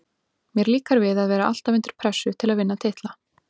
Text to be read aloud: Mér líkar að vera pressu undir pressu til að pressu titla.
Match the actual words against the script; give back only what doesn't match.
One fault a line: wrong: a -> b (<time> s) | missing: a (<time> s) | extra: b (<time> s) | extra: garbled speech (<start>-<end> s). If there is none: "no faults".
extra: við (1.0 s)
wrong: pressu -> alltaf (1.5 s)
wrong: pressu -> vinna (2.6 s)